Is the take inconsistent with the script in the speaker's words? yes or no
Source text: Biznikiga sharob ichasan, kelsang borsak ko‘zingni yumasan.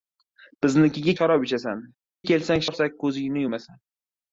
no